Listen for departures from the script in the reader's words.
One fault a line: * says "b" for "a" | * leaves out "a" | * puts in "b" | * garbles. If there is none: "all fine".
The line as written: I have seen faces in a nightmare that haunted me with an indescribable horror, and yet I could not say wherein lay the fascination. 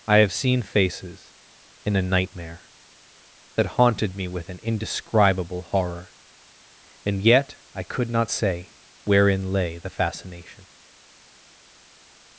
all fine